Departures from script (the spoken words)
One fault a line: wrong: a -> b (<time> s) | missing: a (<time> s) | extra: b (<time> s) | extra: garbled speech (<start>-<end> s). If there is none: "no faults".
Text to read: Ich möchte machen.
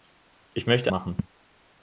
no faults